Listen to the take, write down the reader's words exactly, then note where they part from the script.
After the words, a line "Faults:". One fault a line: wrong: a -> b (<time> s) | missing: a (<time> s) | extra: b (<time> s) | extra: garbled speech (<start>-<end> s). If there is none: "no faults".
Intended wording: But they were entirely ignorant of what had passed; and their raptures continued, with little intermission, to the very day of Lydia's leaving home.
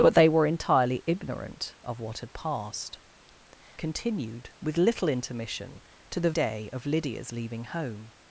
But they were entirely ignorant of what had passed; continued, with little intermission, to the day of Lydia's leaving home.
Faults:
missing: and their raptures (3.0 s)
missing: very (6.3 s)